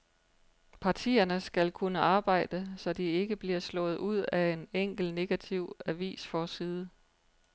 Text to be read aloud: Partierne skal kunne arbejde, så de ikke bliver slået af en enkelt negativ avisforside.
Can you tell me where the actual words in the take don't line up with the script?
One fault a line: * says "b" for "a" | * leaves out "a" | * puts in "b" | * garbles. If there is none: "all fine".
* puts in "ud"